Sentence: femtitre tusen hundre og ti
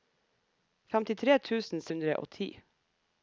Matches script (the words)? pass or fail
pass